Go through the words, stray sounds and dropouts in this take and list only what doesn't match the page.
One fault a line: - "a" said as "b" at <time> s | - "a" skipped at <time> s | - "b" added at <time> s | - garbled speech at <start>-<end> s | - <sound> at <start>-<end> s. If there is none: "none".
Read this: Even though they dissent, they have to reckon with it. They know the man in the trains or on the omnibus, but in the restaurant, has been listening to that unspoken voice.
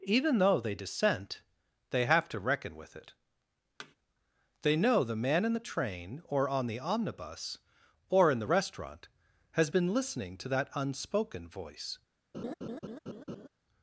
- thud at 3.8-4.0 s
- "trains" said as "train" at 5.6 s
- "but" said as "or" at 8.1 s
- laugh at 12.3-13.5 s